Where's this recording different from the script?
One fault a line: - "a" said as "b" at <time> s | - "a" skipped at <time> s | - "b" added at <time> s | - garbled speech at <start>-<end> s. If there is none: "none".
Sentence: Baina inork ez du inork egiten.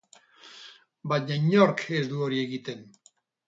- "inork" said as "hori" at 2.3 s